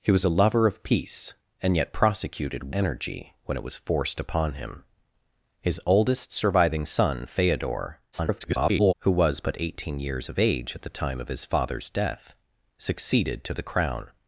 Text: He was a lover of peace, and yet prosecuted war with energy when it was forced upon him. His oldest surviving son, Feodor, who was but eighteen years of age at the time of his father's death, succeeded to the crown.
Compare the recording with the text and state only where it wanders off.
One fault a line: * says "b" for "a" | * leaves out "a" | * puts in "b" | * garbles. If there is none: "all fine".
* leaves out "war with"
* garbles